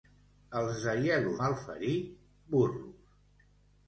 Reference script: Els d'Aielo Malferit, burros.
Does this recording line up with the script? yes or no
yes